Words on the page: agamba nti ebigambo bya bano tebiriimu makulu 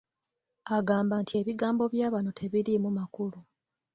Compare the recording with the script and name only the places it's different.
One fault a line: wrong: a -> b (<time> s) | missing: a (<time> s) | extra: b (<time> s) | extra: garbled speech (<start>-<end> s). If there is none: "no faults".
no faults